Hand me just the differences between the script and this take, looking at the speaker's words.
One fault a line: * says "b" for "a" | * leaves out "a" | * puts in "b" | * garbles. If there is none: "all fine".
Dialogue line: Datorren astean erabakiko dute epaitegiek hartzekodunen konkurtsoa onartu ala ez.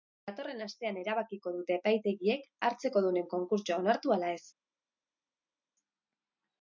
all fine